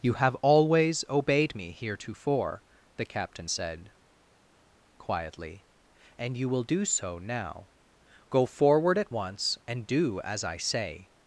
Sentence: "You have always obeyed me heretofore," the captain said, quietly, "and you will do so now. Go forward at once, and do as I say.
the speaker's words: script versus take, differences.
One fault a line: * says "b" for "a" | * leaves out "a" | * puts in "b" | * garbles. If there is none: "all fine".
all fine